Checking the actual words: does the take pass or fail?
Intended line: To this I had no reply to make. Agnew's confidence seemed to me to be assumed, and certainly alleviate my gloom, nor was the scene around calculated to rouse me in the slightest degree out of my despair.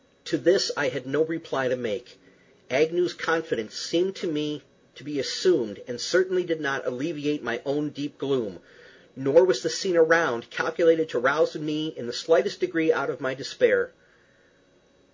fail